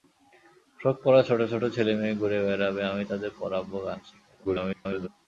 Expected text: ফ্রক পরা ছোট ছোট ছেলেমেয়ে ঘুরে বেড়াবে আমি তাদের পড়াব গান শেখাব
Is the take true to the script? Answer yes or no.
no